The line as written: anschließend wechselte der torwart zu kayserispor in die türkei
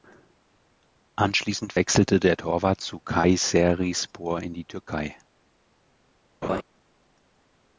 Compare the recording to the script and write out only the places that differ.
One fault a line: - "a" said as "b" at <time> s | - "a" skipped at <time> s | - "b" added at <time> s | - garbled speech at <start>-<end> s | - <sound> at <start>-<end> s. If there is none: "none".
- laugh at 6.4-6.6 s